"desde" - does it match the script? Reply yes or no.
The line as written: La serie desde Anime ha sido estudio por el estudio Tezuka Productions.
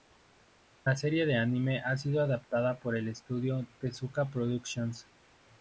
no